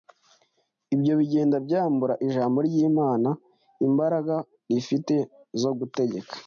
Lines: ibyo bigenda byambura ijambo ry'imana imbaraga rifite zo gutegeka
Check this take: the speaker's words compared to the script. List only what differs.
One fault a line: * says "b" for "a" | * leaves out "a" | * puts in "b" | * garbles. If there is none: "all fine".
all fine